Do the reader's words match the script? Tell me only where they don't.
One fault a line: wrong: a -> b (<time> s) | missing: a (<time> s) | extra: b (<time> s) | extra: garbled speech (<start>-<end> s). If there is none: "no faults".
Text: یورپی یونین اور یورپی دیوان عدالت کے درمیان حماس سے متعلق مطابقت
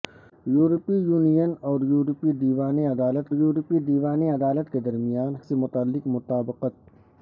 extra: یورپی دیوان عدالت (3.3 s)
missing: حماس (5.3 s)